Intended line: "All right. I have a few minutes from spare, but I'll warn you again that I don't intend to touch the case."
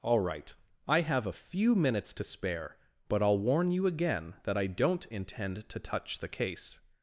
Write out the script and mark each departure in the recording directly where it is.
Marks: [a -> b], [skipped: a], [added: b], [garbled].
"All right. I have a few minutes [from -> to] spare, but I'll warn you again that I don't intend to touch the case."